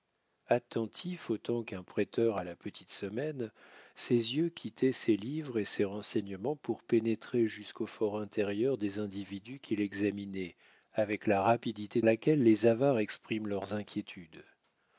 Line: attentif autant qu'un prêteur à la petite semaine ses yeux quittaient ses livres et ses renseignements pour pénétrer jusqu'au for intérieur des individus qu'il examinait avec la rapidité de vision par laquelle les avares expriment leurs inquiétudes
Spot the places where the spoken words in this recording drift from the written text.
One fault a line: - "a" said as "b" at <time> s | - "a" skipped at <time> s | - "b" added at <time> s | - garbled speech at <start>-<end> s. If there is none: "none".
- "de vision par" skipped at 12.0 s